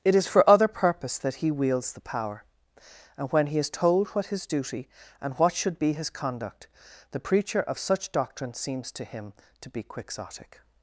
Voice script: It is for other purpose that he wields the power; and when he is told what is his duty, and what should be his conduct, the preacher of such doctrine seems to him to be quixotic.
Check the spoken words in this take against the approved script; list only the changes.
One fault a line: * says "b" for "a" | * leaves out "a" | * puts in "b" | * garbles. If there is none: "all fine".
* leaves out "is"